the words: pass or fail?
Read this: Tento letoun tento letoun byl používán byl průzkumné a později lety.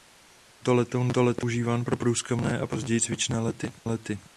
fail